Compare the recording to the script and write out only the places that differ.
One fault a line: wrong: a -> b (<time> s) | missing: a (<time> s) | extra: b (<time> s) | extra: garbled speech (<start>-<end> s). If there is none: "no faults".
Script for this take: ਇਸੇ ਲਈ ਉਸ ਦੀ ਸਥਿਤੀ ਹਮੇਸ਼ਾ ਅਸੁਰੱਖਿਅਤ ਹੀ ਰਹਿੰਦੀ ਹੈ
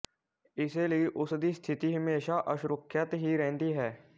no faults